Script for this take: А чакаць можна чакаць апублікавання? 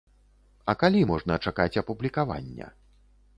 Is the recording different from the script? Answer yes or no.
yes